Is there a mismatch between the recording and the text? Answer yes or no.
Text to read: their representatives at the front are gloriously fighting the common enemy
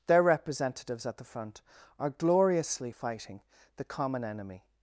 no